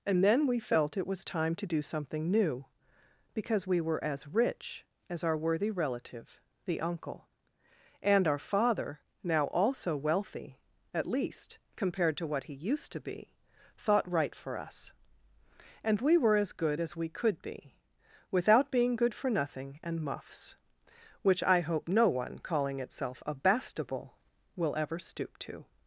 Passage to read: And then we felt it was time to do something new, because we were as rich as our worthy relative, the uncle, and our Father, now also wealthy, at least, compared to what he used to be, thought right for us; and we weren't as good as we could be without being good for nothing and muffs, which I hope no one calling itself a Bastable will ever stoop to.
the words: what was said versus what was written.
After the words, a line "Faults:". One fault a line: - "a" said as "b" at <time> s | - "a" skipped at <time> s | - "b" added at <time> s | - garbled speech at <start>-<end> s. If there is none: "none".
And then we felt it was time to do something new, because we were as rich as our worthy relative, the uncle, and our Father, now also wealthy, at least, compared to what he used to be, thought right for us; and we were as good as we could be without being good for nothing and muffs, which I hope no one calling itself a Bastable will ever stoop to.
Faults:
- "weren't" said as "were" at 16.2 s